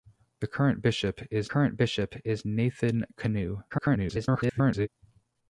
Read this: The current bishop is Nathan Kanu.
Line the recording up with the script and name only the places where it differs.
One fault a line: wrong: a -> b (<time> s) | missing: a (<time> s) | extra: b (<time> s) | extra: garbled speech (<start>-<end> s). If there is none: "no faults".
extra: current bishop is (1.4 s)
extra: garbled speech (3.7-4.9 s)